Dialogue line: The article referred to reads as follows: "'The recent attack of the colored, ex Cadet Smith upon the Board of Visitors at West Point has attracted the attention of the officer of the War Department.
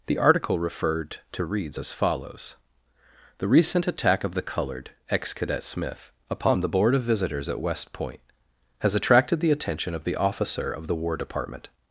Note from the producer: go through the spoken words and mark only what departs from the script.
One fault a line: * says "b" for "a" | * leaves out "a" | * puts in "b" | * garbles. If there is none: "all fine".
all fine